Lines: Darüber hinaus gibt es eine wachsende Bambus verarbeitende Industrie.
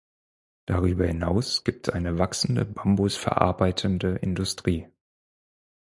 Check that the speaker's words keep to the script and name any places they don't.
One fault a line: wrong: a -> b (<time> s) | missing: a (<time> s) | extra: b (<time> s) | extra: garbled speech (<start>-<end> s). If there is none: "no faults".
missing: es (1.9 s)